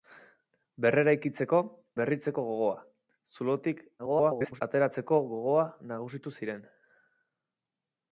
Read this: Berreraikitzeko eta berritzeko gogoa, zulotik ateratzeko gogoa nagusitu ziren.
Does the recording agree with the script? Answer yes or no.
no